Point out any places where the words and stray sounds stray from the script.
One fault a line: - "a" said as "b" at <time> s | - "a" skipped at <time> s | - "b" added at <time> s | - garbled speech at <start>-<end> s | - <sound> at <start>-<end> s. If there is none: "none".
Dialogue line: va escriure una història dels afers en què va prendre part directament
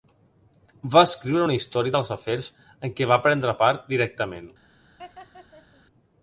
- laugh at 5.0-5.8 s